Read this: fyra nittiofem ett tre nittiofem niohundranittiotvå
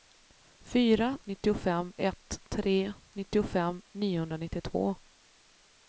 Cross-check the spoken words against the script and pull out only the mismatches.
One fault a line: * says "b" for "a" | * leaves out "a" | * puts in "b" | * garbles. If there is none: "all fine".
all fine